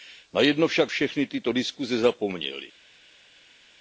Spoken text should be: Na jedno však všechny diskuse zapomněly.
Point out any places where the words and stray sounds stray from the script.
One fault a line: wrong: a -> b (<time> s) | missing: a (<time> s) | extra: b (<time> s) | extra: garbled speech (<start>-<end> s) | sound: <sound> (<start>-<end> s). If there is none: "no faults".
extra: tyto (1.3 s)